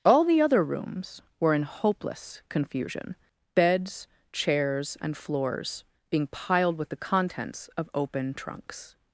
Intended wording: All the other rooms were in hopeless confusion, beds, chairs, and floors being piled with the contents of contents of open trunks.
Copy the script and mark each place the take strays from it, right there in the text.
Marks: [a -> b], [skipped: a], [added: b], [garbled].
All the other rooms were in hopeless confusion, beds, chairs, and floors being piled with the contents of [skipped: contents of] open trunks.